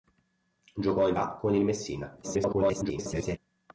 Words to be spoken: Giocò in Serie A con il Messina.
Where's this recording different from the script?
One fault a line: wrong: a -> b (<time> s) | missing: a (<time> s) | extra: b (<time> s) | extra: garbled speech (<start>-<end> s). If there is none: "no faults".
missing: Serie (1.1 s)
extra: garbled speech (2.2-3.4 s)